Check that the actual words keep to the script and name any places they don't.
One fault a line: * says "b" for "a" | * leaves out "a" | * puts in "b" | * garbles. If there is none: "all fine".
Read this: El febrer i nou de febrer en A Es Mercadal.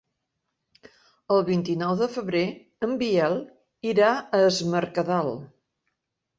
* says "vint" for "febrer"
* puts in "Biel irà"